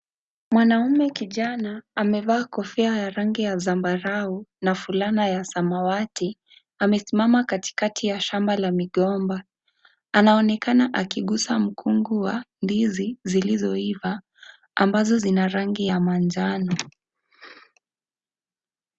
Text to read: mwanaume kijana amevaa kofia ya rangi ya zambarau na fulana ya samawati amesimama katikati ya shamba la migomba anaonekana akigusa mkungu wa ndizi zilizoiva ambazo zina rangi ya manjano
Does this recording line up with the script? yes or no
yes